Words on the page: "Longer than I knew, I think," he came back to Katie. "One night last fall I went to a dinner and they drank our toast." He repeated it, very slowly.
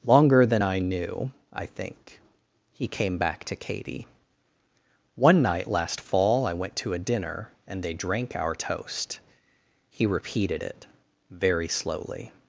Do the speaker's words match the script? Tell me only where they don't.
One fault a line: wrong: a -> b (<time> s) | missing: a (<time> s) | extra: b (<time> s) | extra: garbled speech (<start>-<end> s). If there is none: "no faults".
no faults